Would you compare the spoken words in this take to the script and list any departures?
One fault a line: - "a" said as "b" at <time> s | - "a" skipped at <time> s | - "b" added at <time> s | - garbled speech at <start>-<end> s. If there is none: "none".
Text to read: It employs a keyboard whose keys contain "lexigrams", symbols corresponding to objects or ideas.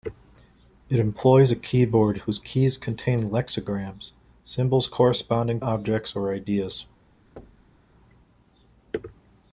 - "to" skipped at 5.6 s